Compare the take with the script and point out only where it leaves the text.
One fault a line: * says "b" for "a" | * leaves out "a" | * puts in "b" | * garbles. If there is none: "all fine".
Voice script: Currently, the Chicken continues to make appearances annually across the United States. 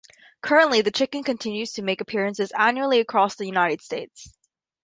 all fine